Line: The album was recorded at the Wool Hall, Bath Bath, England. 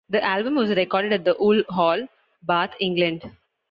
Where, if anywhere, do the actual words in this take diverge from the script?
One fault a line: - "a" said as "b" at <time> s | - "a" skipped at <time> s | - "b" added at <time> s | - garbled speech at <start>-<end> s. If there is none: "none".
- "Bath" skipped at 2.8 s